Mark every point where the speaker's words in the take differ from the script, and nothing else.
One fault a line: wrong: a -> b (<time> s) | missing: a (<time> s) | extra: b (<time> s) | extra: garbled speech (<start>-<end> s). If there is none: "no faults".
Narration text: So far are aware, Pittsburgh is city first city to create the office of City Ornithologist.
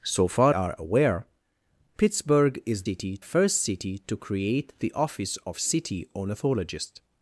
no faults